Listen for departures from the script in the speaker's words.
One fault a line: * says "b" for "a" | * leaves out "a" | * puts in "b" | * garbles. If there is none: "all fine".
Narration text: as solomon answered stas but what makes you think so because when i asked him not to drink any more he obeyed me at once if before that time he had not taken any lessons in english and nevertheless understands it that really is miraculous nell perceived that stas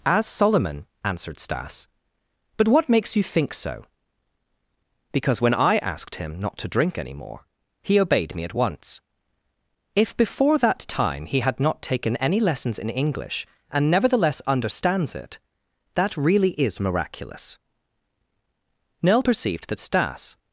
all fine